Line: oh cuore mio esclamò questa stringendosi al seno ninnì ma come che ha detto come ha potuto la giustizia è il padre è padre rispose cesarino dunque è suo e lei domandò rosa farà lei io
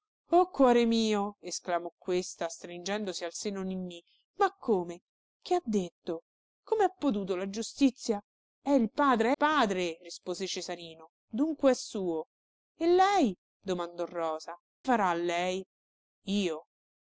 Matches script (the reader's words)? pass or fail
pass